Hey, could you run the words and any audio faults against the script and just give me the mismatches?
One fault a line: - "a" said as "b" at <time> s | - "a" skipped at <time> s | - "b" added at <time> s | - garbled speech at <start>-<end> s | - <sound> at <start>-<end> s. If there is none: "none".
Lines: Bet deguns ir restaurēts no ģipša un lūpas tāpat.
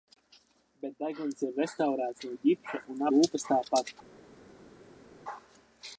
none